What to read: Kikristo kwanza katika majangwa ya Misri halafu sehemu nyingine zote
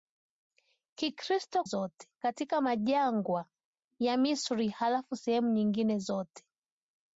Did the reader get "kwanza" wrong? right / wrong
wrong